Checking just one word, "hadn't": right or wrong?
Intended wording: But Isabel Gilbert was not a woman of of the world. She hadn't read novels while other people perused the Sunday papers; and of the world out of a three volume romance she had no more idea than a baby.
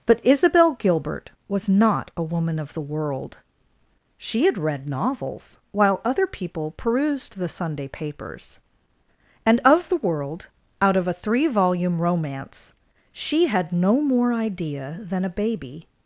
wrong